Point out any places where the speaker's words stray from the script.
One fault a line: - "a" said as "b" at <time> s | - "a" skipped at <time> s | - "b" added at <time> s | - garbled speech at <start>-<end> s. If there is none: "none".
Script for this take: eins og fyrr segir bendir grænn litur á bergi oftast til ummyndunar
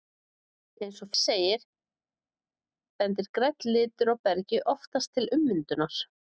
- "fyrr" skipped at 1.1 s